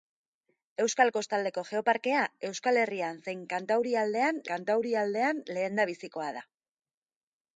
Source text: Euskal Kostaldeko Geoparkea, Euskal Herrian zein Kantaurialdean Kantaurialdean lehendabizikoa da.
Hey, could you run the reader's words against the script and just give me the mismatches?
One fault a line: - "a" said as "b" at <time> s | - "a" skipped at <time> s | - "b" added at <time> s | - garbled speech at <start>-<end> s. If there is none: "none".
none